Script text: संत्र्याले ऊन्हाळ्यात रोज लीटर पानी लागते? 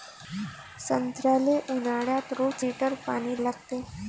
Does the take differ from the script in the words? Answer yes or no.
no